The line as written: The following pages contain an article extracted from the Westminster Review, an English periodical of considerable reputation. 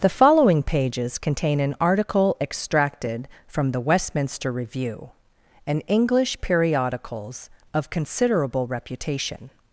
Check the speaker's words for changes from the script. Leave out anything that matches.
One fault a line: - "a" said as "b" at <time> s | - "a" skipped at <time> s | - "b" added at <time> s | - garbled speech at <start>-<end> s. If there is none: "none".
- "periodical" said as "periodicals" at 6.4 s